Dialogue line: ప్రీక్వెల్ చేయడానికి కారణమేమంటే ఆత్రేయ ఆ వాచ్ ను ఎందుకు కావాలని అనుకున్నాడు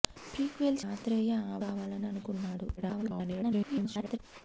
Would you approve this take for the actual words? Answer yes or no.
no